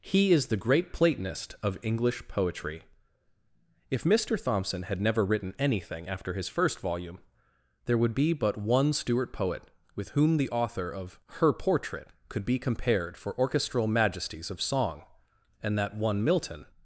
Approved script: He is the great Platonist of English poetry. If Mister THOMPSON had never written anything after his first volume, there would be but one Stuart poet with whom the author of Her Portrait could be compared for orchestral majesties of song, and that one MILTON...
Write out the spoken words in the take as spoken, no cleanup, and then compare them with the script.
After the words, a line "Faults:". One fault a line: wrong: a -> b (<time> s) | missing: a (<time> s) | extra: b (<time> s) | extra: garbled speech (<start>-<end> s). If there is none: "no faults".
He is the great Platonist of English poetry. If Mister THOMPSON had never written anything after his first volume, there would be but one Stuart poet with whom the author of Her Portrait could be compared for orchestral majesties of song, and that one MILTON...
Faults:
no faults